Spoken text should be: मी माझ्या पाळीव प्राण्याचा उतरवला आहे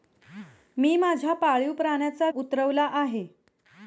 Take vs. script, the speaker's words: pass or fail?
pass